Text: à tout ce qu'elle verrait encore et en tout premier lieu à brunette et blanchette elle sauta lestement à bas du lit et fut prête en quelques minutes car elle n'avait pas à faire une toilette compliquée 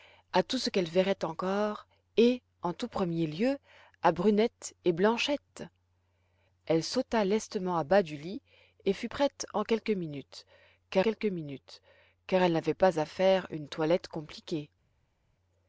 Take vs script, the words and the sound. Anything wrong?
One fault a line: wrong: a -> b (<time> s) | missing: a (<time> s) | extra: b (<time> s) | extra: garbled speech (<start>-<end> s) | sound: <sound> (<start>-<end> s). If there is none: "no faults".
extra: quelques minutes car (11.0 s)